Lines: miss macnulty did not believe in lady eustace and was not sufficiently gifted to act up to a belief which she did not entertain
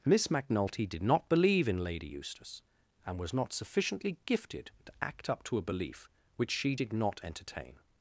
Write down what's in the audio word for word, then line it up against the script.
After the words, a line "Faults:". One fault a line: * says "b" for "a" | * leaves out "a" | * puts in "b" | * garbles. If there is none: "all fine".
miss macnulty did not believe in lady eustace and was not sufficiently gifted to act up to a belief which she did not entertain
Faults:
all fine